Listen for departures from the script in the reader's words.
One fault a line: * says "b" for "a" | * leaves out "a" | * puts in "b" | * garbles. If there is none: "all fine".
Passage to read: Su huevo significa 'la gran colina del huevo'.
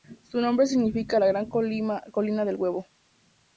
* says "nombre" for "huevo"